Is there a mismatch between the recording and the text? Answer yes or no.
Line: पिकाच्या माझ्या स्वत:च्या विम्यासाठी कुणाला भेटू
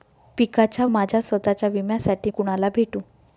no